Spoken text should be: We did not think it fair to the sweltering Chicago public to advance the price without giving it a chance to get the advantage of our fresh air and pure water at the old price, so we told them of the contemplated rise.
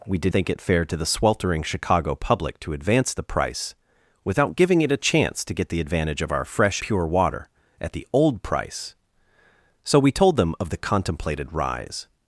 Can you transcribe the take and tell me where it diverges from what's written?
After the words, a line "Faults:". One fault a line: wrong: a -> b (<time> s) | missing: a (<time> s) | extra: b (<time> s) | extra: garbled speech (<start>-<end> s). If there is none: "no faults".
We did think it fair to the sweltering Chicago public to advance the price without giving it a chance to get the advantage of our fresh pure water at the old price, so we told them of the contemplated rise.
Faults:
missing: not (0.3 s)
missing: air and (6.8 s)